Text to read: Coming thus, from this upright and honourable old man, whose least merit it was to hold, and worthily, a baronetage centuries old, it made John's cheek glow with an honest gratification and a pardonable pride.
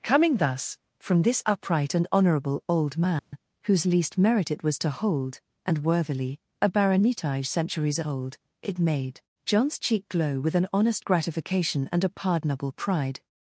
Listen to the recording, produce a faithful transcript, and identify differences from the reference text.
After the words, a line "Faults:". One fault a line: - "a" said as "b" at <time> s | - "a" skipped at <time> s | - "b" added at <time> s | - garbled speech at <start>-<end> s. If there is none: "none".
Coming thus, from this upright and honourable old man, whose least merit it was to hold, and worthily, a baronetage centuries old, it made John's cheek glow with an honest gratification and a pardonable pride.
Faults:
none